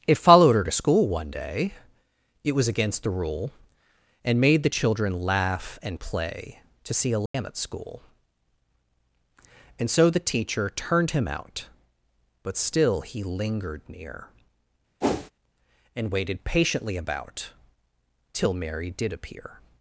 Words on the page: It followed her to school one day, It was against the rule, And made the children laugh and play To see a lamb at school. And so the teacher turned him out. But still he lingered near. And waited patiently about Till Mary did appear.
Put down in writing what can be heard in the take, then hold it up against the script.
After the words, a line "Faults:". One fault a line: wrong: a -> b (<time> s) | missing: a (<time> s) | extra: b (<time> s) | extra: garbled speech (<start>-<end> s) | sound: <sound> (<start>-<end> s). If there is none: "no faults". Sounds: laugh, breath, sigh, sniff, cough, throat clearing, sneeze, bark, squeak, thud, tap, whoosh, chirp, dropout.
It followed her to school one day, It was against the rule, And made the children laugh and play To see a lamb at school. And so the teacher turned him out. But still he lingered near. And waited patiently about Till Mary did appear.
Faults:
sound: dropout (7.3-7.3 s)
sound: whoosh (15.0-15.3 s)